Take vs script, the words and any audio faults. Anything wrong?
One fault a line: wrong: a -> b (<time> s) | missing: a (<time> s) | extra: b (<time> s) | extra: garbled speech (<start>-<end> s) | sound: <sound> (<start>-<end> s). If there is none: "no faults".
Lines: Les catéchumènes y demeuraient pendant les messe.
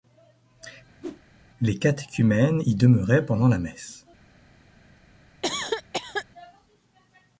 sound: whoosh (1.0-1.2 s)
wrong: les -> la (3.5 s)
sound: cough (5.4-6.3 s)